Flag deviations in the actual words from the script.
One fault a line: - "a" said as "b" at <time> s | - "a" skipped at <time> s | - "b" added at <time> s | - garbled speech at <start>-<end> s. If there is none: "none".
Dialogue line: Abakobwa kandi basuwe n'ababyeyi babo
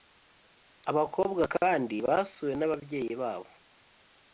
none